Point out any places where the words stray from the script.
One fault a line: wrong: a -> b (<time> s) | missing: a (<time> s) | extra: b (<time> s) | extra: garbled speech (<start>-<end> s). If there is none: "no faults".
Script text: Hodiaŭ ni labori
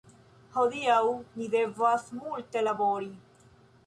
extra: devas multe (1.6 s)